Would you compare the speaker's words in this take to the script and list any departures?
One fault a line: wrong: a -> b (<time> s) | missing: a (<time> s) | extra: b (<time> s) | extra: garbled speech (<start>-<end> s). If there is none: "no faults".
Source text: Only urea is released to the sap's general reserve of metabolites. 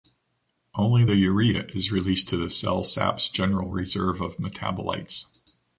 extra: the (1.0 s)
extra: cell (2.5 s)